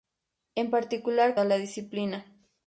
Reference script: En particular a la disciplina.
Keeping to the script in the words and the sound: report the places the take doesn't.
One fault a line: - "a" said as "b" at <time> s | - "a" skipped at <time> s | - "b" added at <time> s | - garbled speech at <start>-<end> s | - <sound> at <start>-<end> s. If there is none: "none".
none